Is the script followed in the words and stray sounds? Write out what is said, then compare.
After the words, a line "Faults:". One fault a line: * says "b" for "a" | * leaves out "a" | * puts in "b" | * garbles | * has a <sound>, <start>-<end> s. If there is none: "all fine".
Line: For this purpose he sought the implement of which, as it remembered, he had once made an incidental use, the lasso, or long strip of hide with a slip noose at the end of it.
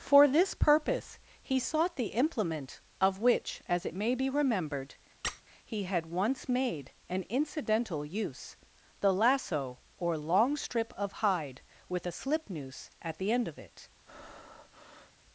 For this purpose he sought the implement of which, as it may be remembered, he had once made an incidental use, the lasso, or long strip of hide with a slip noose at the end of it.
Faults:
* puts in "may be"
* has a squeak, 5.2-5.4 s
* has a breath, 14.1-15.1 s